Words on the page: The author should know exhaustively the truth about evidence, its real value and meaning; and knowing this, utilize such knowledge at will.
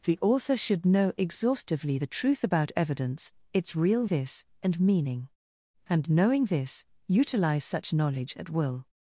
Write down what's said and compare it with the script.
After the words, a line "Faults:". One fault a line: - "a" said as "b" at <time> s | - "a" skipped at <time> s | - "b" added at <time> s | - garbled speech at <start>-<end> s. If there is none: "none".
The author should know exhaustively the truth about evidence, its real this and meaning; and knowing this, utilize such knowledge at will.
Faults:
- "value" said as "this" at 4.0 s